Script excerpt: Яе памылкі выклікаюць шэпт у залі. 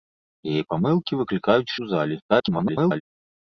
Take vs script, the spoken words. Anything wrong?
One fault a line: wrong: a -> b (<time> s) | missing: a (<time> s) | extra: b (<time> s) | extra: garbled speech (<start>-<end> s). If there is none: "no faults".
missing: шэпт (1.7 s)
extra: garbled speech (2.3-3.0 s)